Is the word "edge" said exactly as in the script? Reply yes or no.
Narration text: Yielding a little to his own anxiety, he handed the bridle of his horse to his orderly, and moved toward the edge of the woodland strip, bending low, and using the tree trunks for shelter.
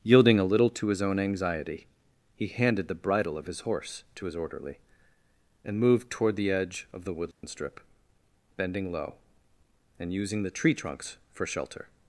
yes